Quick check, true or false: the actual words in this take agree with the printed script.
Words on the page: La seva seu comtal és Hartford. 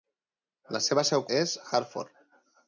false